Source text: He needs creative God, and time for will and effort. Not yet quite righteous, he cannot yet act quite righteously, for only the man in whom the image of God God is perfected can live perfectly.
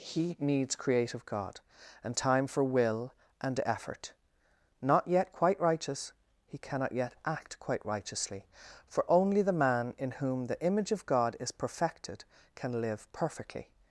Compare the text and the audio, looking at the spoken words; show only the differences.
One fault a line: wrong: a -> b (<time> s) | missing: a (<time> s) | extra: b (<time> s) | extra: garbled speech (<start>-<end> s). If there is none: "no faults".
missing: God (11.4 s)